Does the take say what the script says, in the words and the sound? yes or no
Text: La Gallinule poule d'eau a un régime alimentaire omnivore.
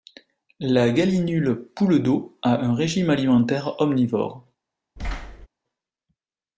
no